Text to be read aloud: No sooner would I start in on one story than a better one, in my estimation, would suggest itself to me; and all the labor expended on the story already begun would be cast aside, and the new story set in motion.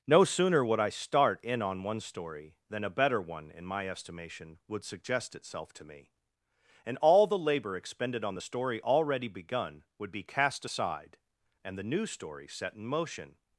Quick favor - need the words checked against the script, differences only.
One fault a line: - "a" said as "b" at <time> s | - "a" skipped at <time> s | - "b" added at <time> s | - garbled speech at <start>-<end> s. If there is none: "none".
none